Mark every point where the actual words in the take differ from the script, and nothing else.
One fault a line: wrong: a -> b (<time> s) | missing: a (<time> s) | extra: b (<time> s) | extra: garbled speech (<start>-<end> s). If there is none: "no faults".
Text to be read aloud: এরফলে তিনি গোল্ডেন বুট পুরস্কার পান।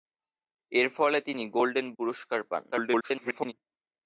missing: বুট (1.9 s)
extra: garbled speech (2.7-3.5 s)